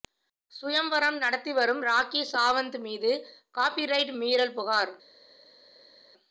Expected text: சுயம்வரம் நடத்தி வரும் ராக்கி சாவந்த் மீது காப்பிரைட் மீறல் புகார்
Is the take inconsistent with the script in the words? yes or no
no